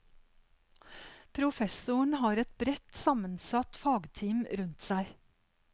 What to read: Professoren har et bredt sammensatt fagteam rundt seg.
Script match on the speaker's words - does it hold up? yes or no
yes